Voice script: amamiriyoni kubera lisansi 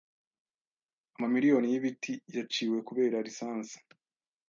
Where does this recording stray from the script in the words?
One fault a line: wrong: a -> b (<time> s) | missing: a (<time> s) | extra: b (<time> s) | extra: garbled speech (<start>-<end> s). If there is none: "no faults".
extra: y'ibiti yaciwe (1.7 s)